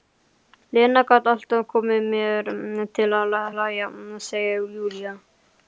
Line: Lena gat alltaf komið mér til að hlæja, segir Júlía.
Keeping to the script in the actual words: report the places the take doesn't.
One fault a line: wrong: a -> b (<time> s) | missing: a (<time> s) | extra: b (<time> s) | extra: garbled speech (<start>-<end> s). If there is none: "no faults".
no faults